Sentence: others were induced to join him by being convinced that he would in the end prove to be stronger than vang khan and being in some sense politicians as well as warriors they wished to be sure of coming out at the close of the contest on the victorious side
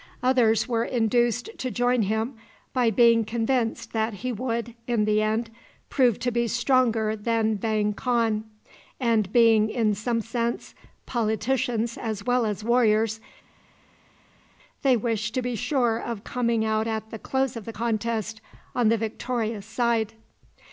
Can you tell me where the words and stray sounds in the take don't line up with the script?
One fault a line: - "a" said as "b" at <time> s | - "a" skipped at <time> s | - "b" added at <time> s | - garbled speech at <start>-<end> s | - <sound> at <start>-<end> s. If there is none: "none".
none